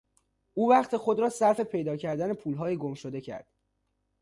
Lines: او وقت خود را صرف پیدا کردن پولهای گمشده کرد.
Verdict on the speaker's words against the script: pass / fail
pass